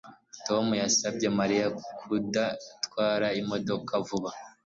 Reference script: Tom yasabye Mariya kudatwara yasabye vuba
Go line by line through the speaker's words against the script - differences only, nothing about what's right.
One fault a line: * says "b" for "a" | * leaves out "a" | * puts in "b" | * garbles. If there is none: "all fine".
* says "imodoka" for "yasabye"